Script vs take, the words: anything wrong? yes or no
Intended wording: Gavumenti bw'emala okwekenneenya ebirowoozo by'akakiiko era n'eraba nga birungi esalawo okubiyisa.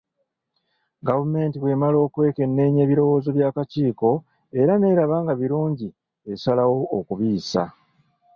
no